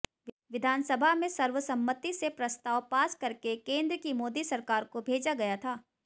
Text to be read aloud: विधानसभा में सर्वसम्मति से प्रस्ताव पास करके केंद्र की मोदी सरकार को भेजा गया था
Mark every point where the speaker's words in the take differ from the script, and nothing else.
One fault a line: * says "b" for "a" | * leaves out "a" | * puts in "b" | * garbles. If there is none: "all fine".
all fine